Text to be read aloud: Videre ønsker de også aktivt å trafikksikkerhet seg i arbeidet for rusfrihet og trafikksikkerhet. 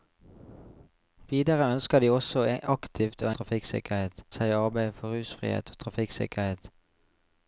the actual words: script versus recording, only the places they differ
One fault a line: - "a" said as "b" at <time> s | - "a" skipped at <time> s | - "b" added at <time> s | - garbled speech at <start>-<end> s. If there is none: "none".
none